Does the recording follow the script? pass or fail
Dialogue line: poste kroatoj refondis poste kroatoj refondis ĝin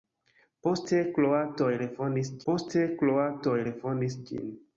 pass